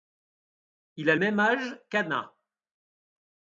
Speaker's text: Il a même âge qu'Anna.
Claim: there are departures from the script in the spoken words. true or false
false